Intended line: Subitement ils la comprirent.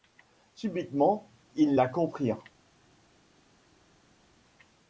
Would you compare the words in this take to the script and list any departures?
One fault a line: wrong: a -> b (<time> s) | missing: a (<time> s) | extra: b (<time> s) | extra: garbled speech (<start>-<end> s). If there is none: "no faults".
no faults